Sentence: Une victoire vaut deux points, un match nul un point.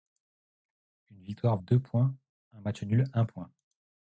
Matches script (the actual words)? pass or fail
fail